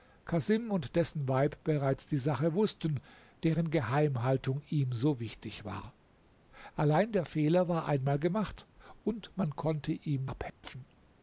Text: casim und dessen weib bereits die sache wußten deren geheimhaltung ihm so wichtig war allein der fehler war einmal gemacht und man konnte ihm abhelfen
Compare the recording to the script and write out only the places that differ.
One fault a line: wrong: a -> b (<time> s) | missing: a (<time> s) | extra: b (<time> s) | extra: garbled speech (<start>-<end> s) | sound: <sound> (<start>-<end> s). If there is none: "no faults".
sound: dropout (10.5-10.6 s)